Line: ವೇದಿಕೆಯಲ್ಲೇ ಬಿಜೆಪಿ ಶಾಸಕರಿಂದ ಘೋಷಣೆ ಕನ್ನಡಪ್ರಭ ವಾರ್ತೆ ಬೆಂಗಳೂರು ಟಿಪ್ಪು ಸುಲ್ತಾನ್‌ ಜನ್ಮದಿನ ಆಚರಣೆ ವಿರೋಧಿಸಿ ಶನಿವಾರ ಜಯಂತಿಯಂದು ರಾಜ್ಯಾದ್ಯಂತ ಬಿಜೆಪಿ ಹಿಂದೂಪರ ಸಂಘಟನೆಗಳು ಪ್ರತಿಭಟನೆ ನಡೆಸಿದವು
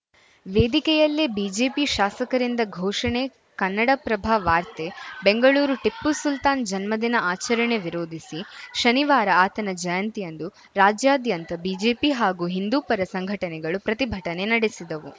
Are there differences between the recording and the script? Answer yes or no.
yes